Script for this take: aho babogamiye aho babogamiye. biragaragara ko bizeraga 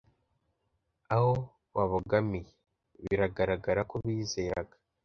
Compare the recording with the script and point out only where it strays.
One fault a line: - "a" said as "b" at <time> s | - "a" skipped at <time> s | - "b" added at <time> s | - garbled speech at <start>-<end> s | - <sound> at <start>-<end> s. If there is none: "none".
- "aho babogamiye" skipped at 2.5 s